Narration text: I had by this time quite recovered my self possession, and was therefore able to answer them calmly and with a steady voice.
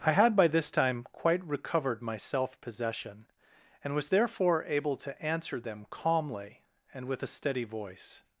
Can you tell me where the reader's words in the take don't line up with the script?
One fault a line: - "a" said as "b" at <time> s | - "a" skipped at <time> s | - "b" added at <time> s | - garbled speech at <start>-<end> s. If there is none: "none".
none